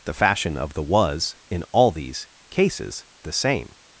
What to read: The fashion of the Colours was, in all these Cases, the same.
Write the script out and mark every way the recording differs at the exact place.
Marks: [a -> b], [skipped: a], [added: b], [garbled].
The fashion of the [skipped: Colours] was, in all these Cases, the same.